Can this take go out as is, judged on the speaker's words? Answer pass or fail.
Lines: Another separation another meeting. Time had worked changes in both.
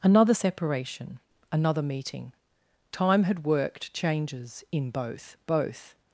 fail